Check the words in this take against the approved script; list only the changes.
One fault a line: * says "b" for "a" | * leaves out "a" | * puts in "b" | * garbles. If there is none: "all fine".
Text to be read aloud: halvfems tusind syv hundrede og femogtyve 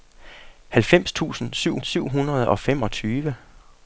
* puts in "syv"